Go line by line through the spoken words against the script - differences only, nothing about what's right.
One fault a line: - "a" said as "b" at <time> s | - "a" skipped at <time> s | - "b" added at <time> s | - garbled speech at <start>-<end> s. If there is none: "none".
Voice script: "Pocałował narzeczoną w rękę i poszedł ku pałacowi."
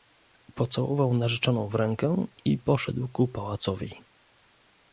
none